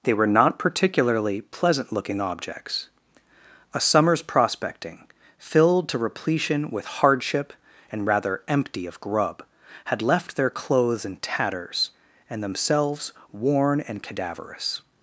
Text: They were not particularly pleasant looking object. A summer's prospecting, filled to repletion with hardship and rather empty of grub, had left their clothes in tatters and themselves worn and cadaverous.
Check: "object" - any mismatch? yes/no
yes